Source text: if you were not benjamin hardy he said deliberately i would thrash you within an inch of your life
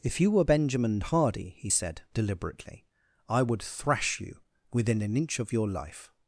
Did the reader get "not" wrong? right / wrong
wrong